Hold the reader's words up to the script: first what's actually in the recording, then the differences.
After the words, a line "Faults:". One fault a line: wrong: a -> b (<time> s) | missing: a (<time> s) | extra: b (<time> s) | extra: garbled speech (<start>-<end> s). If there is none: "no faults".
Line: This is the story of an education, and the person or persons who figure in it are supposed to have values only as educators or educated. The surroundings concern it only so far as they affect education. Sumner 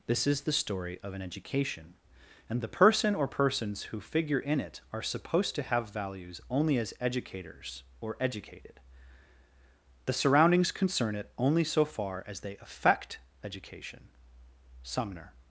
This is the story of an education, and the person or persons who figure in it are supposed to have values only as educators or educated. The surroundings concern it only so far as they affect education. Sumner
Faults:
no faults